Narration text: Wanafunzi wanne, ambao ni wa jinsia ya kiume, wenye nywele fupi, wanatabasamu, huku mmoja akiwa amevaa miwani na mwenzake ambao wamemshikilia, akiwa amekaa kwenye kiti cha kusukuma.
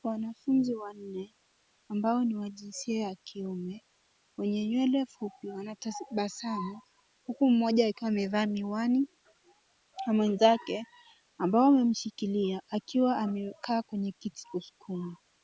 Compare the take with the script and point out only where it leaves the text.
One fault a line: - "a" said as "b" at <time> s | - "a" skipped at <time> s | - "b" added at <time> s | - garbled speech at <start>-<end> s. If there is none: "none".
- "cha" skipped at 14.4 s